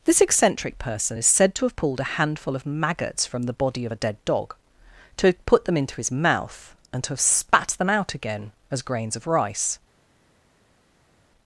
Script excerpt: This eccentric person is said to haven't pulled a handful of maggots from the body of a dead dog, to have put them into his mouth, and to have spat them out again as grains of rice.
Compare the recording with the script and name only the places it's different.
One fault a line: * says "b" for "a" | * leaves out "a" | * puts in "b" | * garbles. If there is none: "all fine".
* says "have" for "haven't"